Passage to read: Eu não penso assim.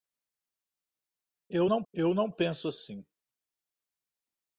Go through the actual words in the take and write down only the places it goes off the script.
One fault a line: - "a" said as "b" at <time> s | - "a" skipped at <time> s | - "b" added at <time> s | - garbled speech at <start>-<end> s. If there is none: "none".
- "eu não" added at 1.9 s